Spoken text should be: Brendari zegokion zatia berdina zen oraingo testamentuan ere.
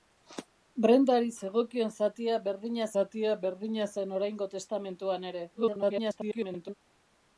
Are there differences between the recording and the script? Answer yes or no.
yes